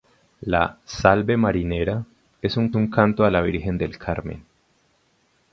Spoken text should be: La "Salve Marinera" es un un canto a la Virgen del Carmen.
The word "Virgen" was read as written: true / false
true